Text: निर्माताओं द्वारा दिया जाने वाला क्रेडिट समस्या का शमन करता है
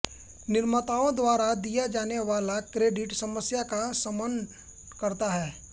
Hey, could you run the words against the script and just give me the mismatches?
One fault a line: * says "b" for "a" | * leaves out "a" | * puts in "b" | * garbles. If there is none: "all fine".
all fine